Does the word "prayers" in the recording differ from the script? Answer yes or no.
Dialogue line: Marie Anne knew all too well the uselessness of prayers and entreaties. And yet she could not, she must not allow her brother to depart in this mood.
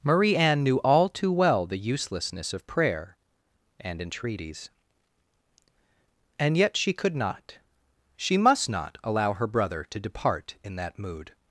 yes